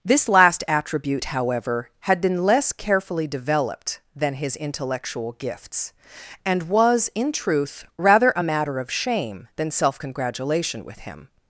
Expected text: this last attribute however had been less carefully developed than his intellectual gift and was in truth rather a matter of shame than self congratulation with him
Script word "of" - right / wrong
right